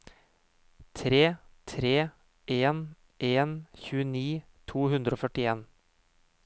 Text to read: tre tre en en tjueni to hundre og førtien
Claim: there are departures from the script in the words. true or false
false